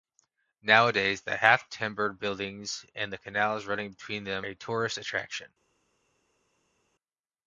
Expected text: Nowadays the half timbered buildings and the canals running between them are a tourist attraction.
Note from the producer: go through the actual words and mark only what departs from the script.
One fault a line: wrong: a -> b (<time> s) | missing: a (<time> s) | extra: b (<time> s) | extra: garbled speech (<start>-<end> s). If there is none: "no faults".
missing: are (4.5 s)